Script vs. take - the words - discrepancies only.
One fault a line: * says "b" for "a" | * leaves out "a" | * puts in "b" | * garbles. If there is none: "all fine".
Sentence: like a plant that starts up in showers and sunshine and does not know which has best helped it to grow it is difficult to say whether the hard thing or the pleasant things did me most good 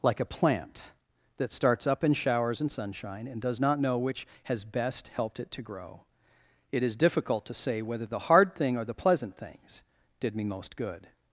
all fine